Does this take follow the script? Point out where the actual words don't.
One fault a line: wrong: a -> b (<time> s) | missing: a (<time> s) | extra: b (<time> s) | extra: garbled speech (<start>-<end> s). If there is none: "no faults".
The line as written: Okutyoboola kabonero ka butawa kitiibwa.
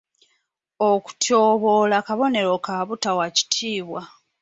no faults